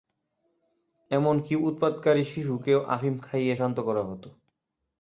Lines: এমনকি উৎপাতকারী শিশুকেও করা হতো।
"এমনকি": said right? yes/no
yes